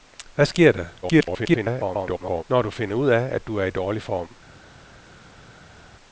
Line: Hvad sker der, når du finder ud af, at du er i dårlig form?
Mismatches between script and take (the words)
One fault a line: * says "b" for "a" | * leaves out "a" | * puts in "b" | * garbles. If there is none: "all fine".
* garbles